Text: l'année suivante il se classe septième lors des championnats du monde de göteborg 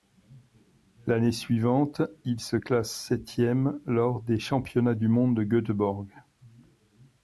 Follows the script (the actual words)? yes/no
yes